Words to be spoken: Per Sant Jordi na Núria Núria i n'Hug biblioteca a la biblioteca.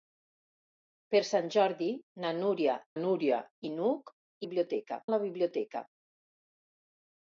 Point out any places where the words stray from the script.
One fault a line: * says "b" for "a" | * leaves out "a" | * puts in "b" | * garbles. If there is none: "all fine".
all fine